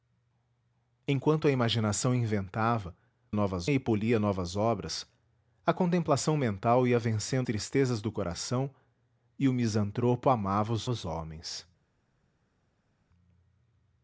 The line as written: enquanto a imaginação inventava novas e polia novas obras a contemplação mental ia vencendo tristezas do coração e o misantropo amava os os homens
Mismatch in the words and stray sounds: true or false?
false